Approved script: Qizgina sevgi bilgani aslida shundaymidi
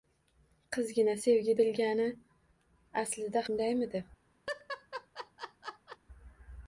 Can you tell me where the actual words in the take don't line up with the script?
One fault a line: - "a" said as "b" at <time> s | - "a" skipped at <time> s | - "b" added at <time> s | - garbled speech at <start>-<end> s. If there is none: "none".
none